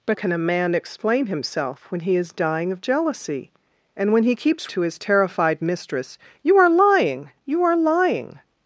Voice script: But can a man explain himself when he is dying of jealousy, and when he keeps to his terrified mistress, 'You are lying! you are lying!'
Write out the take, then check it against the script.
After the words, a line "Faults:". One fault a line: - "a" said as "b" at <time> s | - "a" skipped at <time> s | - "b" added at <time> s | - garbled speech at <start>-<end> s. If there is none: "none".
But can a man explain himself when he is dying of jealousy, and when he keeps to his terrified mistress, 'You are lying! you are lying!'
Faults:
none